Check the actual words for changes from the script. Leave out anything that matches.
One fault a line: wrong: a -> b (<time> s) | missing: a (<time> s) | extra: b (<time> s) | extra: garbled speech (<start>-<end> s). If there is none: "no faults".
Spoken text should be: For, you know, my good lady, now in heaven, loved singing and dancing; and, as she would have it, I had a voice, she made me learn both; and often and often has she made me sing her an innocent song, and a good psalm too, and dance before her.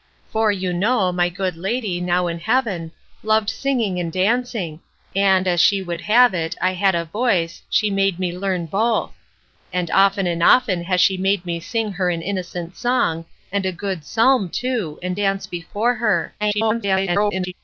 extra: garbled speech (16.4-17.5 s)